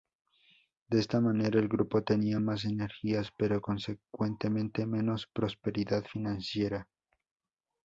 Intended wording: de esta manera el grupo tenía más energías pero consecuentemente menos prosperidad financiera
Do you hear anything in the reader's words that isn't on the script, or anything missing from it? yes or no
no